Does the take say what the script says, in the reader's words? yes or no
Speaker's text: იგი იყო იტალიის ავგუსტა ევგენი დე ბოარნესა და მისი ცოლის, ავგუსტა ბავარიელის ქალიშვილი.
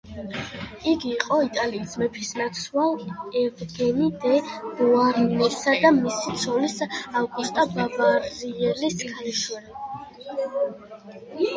no